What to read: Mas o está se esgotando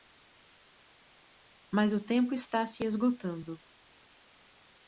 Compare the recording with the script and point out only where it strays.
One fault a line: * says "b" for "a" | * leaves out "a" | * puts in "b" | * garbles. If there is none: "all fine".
* puts in "tempo"